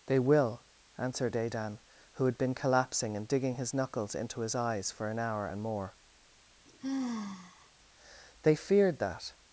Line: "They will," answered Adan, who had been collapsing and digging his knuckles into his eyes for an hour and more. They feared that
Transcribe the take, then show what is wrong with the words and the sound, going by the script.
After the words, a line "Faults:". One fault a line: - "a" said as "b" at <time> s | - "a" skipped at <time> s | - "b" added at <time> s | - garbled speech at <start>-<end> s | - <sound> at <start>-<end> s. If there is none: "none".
"They will," answered Adan, who had been collapsing and digging his knuckles into his eyes for an hour and more. They feared that
Faults:
- sigh at 6.7-7.7 s